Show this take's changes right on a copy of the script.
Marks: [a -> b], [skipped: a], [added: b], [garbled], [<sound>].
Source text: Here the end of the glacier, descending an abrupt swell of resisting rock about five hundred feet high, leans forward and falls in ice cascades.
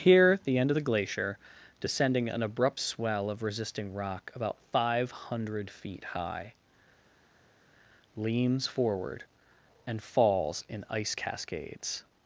Here the end of the glacier, descending an abrupt swell of resisting rock about five hundred feet high, leans forward and falls in ice cascades.